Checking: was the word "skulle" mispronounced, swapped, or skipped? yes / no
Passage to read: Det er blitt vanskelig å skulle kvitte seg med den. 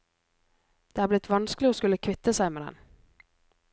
no